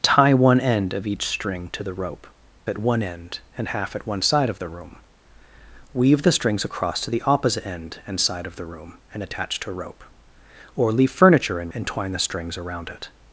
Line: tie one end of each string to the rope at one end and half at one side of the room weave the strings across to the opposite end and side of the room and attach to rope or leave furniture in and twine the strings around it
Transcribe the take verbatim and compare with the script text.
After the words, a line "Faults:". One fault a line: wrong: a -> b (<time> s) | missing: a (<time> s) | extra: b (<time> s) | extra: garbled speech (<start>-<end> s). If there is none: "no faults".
tie one end of each string to the rope at one end and half at one side of the room weave the strings across to the opposite end and side of the room and attach to rope or leave furniture in and twine the strings around it
Faults:
no faults